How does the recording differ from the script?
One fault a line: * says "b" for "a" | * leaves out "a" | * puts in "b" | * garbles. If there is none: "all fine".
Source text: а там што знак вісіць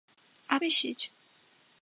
* leaves out "там што знак"